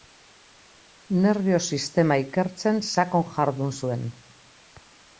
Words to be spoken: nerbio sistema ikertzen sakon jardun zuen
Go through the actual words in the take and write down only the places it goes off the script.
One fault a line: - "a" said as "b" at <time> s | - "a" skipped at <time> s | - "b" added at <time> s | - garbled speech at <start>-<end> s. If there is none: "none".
none